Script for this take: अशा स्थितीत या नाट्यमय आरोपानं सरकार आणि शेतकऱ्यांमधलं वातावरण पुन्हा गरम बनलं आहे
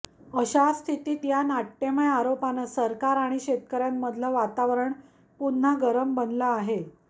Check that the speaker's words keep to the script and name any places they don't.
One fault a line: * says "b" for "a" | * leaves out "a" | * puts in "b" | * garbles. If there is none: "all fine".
all fine